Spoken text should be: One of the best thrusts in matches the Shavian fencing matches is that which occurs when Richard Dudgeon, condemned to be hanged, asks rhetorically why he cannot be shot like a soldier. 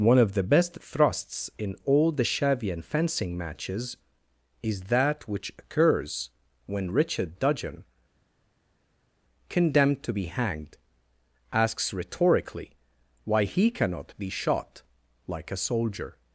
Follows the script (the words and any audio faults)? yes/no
no